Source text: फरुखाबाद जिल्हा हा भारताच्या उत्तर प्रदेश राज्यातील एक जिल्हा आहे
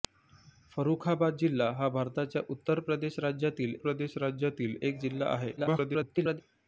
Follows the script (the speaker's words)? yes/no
no